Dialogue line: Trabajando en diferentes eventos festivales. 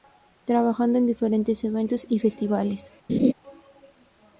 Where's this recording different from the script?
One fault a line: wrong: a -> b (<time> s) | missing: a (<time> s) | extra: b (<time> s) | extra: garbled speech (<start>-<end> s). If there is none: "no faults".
extra: y (2.1 s)